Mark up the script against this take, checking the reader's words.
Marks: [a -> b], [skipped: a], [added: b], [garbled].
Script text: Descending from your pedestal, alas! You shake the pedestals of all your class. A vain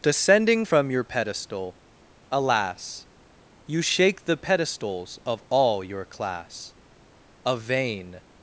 Descending from your pedestal, alas! You shake the pedestals of all your class. A vain